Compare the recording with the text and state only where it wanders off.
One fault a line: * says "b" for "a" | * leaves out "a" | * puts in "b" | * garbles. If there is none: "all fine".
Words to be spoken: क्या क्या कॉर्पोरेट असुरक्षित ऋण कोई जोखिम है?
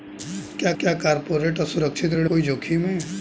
all fine